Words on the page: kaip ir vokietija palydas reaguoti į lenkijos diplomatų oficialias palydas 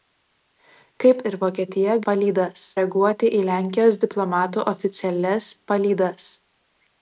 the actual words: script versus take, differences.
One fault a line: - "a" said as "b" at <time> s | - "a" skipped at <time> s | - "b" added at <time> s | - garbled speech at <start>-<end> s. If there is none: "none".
none